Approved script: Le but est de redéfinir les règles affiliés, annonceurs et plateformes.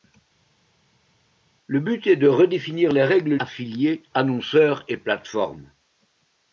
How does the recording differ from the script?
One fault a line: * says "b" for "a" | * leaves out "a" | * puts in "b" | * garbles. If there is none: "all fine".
all fine